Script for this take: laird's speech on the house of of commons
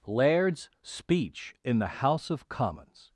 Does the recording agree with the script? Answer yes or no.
no